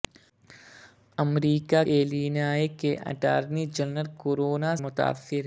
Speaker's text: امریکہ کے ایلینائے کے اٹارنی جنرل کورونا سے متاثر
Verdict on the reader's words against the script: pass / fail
fail